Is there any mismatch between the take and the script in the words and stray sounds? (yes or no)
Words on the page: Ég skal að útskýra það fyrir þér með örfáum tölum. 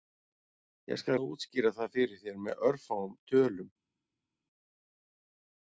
no